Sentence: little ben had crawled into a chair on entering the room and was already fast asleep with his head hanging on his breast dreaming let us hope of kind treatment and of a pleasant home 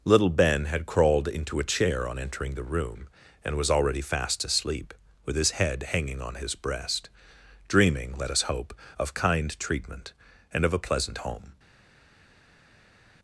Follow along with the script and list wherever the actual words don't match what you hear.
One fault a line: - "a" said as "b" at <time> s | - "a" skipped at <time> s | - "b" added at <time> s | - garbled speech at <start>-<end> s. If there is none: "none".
none